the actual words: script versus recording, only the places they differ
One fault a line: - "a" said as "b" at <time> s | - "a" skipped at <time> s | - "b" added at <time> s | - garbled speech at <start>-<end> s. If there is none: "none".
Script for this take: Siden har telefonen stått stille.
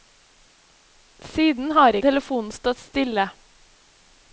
none